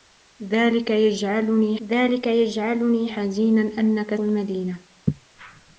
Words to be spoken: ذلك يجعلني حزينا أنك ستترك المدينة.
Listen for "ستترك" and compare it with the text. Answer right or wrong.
wrong